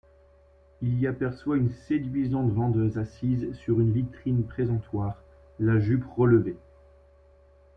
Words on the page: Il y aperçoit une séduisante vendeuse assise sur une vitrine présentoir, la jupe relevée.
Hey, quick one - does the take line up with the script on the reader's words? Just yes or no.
yes